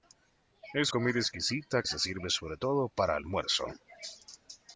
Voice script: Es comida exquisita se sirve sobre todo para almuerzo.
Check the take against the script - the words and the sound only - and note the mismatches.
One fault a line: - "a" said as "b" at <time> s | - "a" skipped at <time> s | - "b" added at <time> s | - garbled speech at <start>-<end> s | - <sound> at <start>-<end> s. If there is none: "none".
none